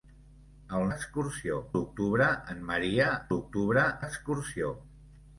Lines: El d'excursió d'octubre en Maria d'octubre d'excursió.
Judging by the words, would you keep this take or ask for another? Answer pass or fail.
pass